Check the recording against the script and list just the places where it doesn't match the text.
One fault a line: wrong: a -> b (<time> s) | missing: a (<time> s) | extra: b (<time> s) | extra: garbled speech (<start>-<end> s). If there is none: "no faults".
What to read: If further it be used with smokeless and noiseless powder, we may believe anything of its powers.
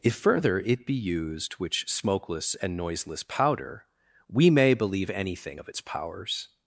wrong: with -> which (1.5 s)